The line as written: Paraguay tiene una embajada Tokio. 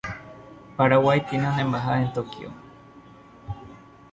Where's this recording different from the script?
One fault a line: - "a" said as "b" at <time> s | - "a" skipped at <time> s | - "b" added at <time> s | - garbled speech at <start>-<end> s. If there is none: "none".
- "en" added at 2.0 s